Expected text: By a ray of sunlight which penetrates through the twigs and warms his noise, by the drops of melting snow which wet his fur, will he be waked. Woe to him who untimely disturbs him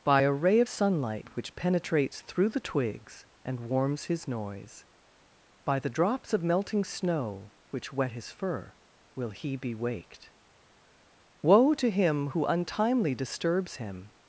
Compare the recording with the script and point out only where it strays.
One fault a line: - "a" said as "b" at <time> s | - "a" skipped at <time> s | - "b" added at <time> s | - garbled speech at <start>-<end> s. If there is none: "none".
none